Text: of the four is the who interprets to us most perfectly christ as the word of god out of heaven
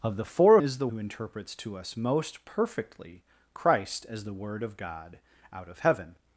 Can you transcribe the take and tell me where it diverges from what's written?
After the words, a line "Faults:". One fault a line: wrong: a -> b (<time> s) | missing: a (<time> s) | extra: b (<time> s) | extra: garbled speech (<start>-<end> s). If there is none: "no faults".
of the four is the who interprets to us most perfectly christ as the word of god out of heaven
Faults:
no faults